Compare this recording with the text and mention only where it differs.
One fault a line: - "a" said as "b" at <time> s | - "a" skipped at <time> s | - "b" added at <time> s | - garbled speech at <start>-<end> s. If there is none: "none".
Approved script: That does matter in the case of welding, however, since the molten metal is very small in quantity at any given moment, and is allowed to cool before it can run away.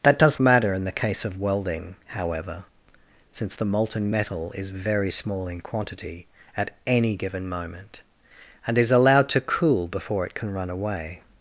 none